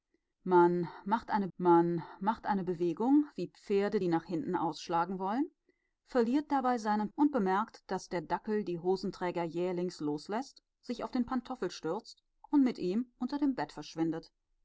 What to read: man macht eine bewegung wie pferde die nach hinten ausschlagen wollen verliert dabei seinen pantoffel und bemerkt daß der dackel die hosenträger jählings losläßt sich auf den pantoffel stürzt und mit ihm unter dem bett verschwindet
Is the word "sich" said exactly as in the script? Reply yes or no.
yes